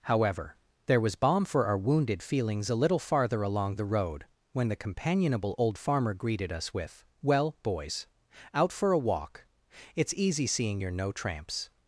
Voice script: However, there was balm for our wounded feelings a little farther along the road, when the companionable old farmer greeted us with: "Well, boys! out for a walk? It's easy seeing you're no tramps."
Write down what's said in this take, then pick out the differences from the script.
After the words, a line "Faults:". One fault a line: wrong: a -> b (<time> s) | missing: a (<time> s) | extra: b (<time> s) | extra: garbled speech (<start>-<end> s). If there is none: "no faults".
However, there was balm for our wounded feelings a little farther along the road, when the companionable old farmer greeted us with: "Well, boys! out for a walk? It's easy seeing you're no tramps."
Faults:
no faults